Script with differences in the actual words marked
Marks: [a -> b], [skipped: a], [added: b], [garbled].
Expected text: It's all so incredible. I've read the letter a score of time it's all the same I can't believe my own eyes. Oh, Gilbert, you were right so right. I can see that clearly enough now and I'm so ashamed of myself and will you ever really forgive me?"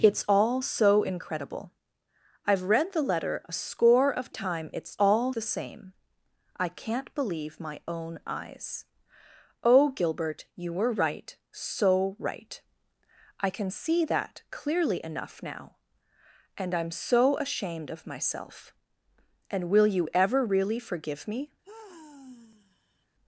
It's all so incredible. I've read the letter a score of time it's all the same I can't believe my own eyes. Oh, Gilbert, you were right so right. I can see that clearly enough now and I'm so ashamed of myself and will you ever really forgive me?"